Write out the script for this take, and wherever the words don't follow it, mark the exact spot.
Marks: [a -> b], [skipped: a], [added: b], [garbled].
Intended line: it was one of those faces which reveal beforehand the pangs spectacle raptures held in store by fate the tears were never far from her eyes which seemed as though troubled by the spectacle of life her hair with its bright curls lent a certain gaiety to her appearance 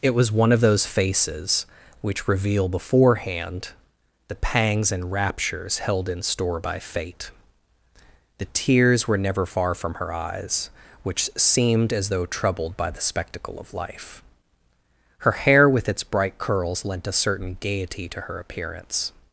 it was one of those faces which reveal beforehand the pangs [spectacle -> and] raptures held in store by fate the tears were never far from her eyes which seemed as though troubled by the spectacle of life her hair with its bright curls lent a certain gaiety to her appearance